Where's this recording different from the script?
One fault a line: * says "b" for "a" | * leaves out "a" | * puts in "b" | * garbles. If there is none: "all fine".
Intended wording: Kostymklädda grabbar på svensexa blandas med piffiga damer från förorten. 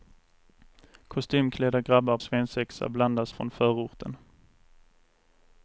* leaves out "på"
* leaves out "med piffiga damer"